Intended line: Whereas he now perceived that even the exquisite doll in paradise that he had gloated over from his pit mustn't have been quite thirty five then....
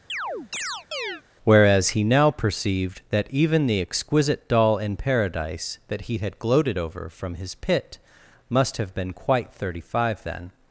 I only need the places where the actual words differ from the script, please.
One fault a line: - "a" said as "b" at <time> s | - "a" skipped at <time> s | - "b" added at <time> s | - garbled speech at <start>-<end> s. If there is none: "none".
- "mustn't" said as "must" at 8.5 s